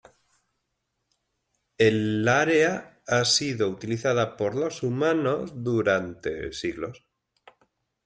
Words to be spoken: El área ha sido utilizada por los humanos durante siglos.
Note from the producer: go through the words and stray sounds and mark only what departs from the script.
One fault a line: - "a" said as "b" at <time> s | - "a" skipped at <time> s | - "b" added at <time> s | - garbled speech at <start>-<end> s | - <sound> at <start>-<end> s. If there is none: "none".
none